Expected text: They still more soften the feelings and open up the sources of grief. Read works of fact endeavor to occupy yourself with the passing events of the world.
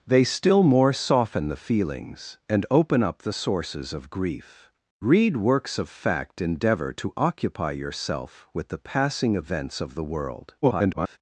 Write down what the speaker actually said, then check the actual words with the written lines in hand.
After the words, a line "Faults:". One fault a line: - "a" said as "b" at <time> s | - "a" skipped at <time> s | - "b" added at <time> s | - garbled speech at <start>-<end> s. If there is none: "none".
They still more soften the feelings and open up the sources of grief. Read works of fact endeavor to occupy yourself with the passing events of the world. [garbled]
Faults:
- garbled speech at 10.6-11.2 s